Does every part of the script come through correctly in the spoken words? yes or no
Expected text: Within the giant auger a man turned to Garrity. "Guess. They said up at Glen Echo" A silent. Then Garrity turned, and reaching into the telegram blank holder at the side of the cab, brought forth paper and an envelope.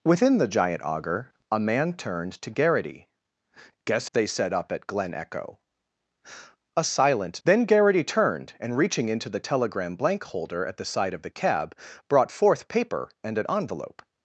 yes